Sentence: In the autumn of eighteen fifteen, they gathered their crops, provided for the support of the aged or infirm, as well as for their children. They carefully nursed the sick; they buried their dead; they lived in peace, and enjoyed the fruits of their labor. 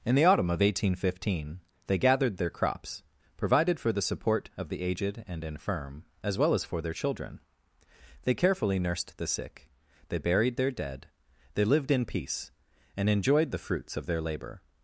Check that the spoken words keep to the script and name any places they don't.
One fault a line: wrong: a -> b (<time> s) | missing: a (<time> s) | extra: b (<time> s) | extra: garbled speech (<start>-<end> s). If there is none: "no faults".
wrong: or -> and (5.3 s)